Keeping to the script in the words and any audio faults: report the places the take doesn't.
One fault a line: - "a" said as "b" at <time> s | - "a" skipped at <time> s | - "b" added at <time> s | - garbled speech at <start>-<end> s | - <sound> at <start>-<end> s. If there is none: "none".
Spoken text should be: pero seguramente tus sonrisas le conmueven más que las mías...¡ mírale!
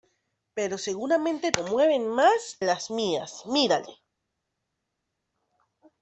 - "tus sonrisas le" skipped at 1.5 s
- "que" skipped at 2.6 s